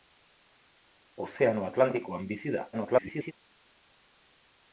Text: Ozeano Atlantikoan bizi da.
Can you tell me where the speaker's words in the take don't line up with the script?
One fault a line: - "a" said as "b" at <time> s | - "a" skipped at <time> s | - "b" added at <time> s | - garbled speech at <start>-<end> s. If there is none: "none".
- garbled speech at 2.7-3.3 s